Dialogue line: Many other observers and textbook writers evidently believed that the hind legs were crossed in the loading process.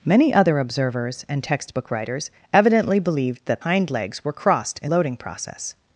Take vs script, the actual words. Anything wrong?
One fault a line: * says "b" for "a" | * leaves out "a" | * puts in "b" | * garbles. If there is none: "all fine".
* leaves out "the"
* leaves out "the"